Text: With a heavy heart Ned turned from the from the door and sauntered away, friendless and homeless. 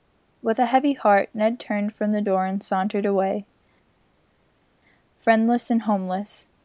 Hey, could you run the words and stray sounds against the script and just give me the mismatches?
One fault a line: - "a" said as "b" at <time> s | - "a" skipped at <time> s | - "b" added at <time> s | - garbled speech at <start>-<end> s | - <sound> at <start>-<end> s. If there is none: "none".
- "from the" skipped at 2.2 s